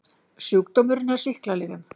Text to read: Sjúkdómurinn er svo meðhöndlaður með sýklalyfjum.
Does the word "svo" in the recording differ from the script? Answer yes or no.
yes